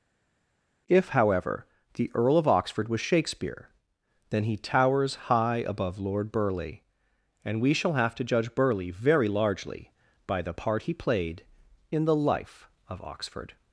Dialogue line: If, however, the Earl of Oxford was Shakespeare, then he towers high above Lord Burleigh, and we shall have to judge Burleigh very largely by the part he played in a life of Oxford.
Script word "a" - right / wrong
wrong